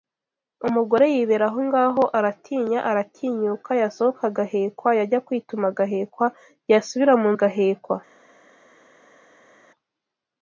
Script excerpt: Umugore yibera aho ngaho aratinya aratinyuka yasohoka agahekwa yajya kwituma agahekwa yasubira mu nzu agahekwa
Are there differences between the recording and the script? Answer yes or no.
yes